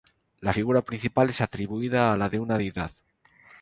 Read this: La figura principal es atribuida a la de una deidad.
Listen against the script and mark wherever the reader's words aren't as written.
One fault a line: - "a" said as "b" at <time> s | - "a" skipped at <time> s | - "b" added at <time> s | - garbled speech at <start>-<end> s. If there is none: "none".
none